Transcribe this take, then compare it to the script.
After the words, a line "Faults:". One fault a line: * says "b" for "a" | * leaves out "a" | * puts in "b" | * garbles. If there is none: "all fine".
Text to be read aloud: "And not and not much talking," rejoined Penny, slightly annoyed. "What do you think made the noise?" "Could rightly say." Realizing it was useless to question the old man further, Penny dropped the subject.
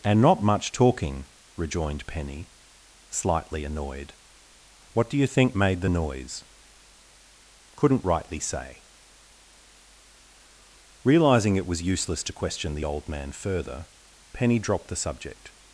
"And not much talking," rejoined Penny, slightly annoyed. "What do you think made the noise?" "Couldn't rightly say." Realizing it was useless to question the old man further, Penny dropped the subject.
Faults:
* leaves out "and not"
* says "Couldn't" for "Could"